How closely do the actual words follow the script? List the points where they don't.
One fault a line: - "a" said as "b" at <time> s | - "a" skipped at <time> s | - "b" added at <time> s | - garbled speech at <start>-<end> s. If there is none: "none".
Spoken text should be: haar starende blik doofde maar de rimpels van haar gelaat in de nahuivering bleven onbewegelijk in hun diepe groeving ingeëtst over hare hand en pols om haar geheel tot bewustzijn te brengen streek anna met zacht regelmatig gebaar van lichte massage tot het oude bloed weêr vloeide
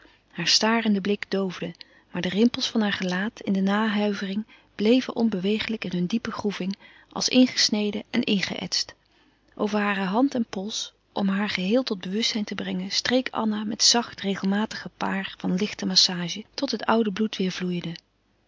- "als ingesneden en" added at 7.1 s